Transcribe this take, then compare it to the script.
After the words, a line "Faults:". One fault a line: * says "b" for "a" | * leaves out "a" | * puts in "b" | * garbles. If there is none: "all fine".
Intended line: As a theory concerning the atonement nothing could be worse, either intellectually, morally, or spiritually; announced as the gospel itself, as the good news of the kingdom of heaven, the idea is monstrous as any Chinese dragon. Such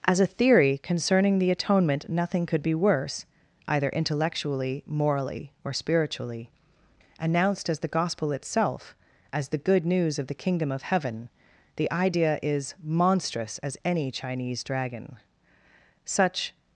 As a theory concerning the atonement nothing could be worse, either intellectually, morally, or spiritually; announced as the gospel itself, as the good news of the kingdom of heaven, the idea is monstrous as any Chinese dragon. Such
Faults:
all fine